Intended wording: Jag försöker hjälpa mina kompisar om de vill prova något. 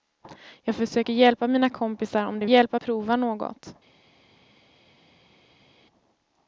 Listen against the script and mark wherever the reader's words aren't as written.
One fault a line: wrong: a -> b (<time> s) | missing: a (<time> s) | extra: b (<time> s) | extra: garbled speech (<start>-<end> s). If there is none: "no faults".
wrong: vill -> hjälpa (2.4 s)